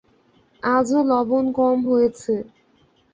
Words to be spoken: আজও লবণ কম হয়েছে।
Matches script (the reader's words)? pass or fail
pass